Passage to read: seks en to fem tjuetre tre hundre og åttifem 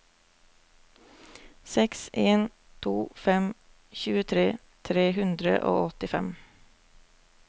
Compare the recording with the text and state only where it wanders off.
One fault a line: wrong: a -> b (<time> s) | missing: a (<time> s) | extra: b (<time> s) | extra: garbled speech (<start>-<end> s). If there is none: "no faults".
no faults